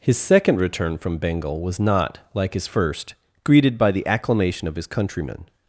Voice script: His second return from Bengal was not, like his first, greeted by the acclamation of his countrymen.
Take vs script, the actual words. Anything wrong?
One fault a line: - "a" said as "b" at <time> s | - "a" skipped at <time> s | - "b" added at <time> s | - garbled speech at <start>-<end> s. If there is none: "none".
none